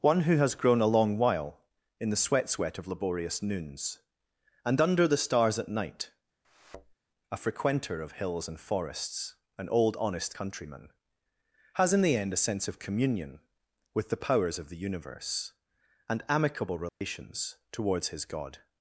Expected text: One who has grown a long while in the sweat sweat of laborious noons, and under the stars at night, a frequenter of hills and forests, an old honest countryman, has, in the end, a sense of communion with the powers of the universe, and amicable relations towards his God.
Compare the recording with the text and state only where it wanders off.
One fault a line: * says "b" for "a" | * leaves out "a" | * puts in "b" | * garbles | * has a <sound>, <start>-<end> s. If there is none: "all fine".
* has a thud, 6.4-6.9 s
* has a dropout, 16.9-17.0 s